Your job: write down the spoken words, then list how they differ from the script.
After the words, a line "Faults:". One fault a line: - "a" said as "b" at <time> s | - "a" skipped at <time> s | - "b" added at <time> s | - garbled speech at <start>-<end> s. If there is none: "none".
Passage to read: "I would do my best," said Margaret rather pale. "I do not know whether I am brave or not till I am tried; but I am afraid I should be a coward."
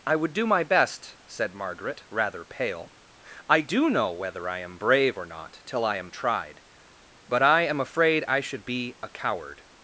"I would do my best," said Margaret rather pale. "I do know whether I am brave or not till I am tried; but I am afraid I should be a coward."
Faults:
- "not" skipped at 3.9 s